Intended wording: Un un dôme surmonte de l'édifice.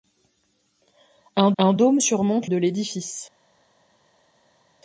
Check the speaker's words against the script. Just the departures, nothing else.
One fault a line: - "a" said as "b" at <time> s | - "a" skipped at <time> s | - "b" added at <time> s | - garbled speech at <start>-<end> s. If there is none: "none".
none